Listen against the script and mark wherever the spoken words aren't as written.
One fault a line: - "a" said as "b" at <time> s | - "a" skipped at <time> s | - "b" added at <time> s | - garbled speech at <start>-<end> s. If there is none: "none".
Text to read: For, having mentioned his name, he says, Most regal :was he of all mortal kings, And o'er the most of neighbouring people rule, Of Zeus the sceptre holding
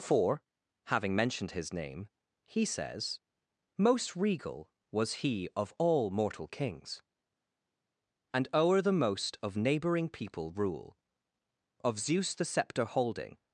none